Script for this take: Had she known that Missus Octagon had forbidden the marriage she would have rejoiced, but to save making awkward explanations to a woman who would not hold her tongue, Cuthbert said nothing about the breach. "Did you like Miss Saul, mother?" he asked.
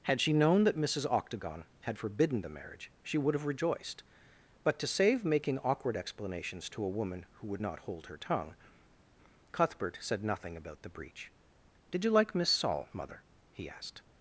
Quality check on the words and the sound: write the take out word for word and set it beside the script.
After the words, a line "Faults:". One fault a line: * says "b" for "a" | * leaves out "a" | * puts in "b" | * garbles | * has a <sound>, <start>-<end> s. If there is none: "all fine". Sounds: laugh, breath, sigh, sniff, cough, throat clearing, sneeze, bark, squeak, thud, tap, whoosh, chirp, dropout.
Had she known that Missus Octagon had forbidden the marriage she would have rejoiced, but to save making awkward explanations to a woman who would not hold her tongue, Cuthbert said nothing about the breach. "Did you like Miss Saul, mother?" he asked.
Faults:
all fine